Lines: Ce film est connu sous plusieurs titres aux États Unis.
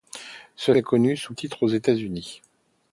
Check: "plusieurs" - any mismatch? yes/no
yes